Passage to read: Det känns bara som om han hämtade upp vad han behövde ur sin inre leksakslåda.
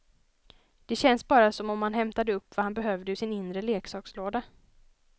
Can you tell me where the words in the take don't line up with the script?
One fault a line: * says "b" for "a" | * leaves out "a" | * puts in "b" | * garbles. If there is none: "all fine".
all fine